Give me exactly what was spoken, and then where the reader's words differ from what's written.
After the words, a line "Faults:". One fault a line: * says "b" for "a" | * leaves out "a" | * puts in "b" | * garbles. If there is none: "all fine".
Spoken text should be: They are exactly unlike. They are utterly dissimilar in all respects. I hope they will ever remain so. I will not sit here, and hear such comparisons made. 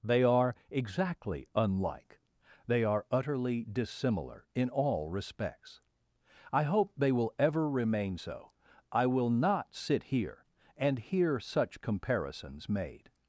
They are exactly unlike. They are utterly dissimilar in all respects. I hope they will ever remain so. I will not sit here, and hear such comparisons made.
Faults:
all fine